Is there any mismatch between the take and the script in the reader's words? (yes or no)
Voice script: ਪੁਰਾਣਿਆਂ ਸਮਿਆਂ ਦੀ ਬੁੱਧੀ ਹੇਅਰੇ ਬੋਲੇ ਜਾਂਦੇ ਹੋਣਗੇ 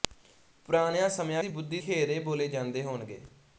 no